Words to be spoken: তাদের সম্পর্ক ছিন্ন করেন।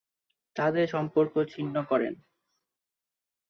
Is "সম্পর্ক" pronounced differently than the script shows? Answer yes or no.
no